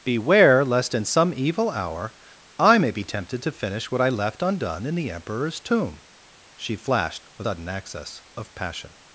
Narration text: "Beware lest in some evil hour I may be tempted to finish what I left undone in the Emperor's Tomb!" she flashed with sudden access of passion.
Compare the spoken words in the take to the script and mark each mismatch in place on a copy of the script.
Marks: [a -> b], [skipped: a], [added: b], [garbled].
"Beware lest in some evil hour I may be tempted to finish what I left undone in the Emperor's Tomb!" she flashed with sudden access of passion.